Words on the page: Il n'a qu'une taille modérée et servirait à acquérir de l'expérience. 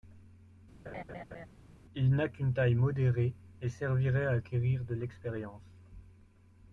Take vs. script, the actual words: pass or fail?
pass